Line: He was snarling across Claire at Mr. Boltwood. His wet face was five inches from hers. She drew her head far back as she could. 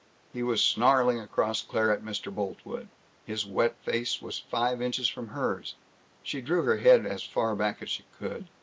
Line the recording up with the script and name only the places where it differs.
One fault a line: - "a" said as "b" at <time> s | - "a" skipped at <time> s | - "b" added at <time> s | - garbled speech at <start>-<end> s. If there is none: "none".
- "as" added at 7.1 s